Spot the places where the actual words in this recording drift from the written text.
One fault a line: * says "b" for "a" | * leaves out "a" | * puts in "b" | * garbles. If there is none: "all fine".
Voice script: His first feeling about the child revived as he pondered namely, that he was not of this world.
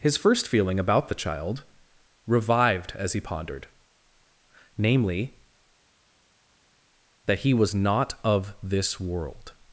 all fine